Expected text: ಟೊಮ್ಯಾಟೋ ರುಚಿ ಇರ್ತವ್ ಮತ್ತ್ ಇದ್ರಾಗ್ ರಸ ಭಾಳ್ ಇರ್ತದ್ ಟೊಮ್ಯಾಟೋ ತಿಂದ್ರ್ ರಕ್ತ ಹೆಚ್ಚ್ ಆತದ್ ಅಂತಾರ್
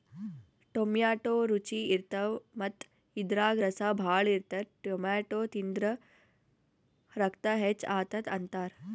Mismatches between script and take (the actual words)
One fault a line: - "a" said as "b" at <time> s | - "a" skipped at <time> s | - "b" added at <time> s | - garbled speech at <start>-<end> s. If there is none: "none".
none